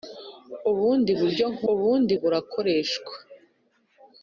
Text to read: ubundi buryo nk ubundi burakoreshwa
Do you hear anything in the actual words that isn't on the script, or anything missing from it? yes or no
no